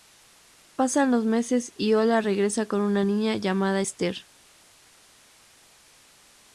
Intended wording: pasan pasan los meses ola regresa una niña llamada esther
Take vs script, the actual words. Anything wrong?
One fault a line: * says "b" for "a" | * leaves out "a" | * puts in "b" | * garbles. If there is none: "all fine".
* leaves out "pasan"
* puts in "y"
* puts in "con"